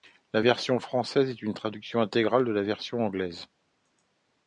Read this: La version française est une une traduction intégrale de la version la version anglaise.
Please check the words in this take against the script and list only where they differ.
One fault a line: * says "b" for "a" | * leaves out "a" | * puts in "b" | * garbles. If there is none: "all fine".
* leaves out "une"
* leaves out "la version"